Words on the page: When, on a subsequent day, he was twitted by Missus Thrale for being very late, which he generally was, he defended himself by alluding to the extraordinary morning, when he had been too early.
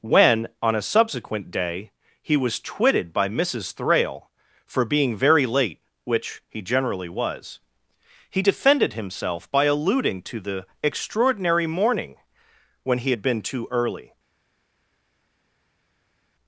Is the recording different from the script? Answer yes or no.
no